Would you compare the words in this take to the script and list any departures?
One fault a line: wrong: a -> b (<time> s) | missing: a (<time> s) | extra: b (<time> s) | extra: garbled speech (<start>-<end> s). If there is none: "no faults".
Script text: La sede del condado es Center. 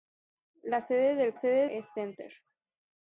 wrong: condado -> sede (1.3 s)